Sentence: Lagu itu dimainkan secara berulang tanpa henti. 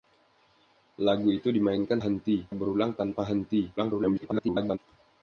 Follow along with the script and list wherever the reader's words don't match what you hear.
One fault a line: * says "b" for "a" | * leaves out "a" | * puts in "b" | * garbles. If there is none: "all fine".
* says "henti" for "secara"
* garbles